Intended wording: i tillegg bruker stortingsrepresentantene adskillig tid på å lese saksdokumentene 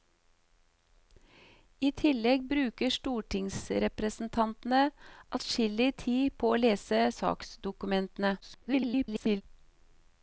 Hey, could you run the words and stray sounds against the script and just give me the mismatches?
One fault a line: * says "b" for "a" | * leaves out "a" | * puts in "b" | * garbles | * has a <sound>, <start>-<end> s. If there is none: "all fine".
* garbles